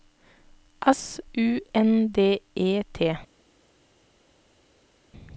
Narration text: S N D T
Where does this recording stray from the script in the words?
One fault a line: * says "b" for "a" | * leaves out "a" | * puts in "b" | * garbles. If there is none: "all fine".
* puts in "U"
* puts in "E"